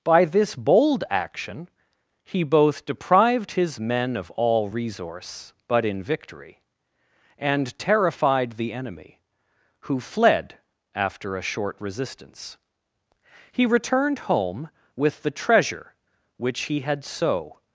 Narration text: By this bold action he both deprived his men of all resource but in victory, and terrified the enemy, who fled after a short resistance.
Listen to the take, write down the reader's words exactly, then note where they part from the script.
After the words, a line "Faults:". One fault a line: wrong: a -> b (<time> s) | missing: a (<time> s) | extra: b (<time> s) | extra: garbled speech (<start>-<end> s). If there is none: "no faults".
By this bold action he both deprived his men of all resource but in victory, and terrified the enemy, who fled after a short resistance. He returned home with the treasure which he had so
Faults:
extra: He returned home with the treasure which he had so (13.5 s)